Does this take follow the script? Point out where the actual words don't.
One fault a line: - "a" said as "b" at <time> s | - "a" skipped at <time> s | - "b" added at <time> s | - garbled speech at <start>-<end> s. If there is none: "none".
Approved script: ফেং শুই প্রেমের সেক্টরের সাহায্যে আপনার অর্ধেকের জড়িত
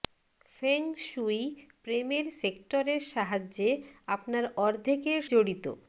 none